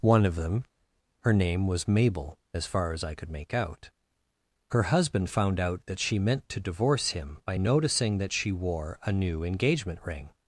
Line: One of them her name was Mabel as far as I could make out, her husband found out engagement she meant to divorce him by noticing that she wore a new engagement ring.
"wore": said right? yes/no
yes